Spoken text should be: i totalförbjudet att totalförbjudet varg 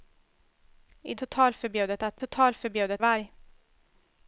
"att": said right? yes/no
yes